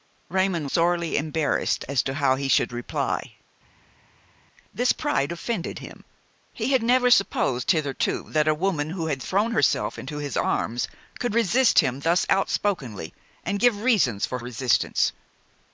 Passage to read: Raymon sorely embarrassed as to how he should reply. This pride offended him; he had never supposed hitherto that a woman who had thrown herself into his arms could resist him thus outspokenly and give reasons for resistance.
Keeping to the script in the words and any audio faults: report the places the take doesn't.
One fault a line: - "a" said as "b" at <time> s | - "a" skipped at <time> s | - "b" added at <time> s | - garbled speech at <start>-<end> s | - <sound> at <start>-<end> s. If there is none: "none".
none